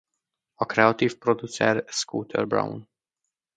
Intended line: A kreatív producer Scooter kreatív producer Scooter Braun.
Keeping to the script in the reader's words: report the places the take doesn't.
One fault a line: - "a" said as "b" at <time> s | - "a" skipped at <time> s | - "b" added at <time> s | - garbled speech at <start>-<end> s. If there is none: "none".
- "kreatív producer Scooter" skipped at 2.5 s